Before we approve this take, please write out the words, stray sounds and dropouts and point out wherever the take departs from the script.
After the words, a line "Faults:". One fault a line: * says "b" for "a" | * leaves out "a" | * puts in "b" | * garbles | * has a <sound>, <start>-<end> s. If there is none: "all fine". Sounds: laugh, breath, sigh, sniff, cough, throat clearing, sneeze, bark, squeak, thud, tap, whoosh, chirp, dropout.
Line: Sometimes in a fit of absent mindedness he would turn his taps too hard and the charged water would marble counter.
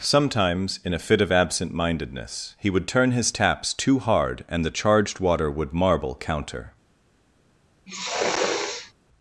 Sometimes in a fit of absent mindedness he would turn his taps too hard and the charged water would marble counter.
Faults:
* has a sniff, 7.9-8.9 s